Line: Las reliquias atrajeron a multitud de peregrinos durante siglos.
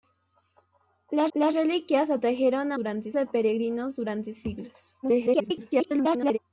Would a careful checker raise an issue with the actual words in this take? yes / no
yes